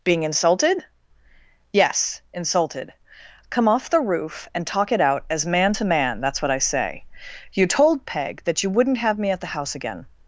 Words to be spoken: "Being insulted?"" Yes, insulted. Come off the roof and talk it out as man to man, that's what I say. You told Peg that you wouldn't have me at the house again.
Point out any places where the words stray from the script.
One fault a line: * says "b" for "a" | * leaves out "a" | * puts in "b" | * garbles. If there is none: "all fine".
all fine